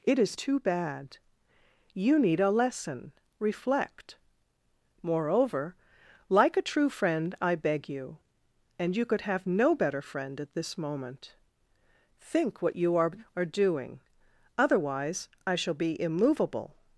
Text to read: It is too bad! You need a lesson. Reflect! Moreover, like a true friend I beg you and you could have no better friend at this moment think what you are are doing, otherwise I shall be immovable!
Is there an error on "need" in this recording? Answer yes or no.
no